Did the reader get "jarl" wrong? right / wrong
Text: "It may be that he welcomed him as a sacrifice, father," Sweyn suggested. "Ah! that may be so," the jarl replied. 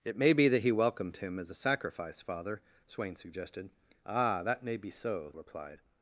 wrong